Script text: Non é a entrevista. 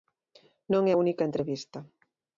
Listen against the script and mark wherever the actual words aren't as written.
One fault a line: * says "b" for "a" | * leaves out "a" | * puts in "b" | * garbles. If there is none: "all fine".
* puts in "única"